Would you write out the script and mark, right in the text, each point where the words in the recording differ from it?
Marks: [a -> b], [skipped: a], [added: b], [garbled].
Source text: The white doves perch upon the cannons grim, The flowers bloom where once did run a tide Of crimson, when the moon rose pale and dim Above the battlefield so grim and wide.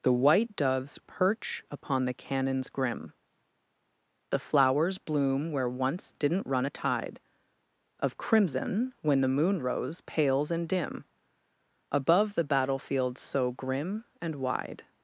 The white doves perch upon the cannons grim, The flowers bloom where once [did -> didn't] run a tide Of crimson, when the moon rose [pale -> pales] and dim Above the battlefield so grim and wide.